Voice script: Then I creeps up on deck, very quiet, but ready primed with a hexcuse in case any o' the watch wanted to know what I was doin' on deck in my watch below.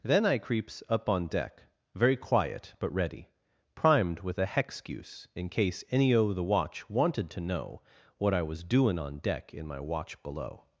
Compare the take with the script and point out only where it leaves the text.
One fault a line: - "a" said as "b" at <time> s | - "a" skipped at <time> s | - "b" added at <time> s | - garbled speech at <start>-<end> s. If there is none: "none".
none